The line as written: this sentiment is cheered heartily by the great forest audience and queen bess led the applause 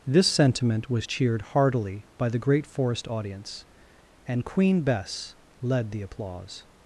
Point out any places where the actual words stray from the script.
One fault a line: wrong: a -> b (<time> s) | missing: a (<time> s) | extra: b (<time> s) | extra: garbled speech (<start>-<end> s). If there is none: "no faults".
wrong: is -> was (0.9 s)